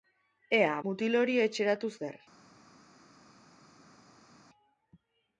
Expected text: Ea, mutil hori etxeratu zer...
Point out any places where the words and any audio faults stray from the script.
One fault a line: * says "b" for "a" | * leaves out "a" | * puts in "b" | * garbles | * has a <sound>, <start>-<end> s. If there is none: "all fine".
all fine